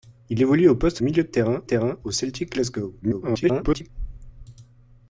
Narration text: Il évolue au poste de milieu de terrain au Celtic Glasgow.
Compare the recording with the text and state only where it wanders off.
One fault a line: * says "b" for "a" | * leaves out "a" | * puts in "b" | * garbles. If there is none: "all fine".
* leaves out "de"
* puts in "terrain"
* garbles